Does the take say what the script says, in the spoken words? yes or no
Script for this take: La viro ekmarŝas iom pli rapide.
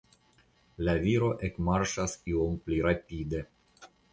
yes